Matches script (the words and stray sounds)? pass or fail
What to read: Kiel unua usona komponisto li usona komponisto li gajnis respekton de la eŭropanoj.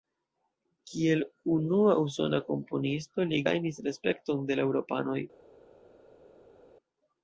fail